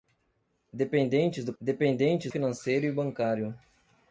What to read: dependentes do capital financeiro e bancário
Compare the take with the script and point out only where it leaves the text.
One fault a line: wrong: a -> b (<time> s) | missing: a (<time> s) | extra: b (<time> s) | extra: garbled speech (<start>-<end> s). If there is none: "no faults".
wrong: capital -> dependentes (1.6 s)